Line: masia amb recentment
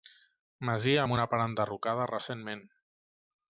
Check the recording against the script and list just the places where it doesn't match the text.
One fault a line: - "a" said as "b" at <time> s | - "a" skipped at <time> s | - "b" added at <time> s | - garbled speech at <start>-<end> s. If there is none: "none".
- "una part enderrocada" added at 1.1 s